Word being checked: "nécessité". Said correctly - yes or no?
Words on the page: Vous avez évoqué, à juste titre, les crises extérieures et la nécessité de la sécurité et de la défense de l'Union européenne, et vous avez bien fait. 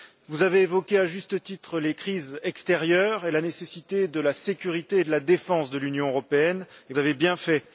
yes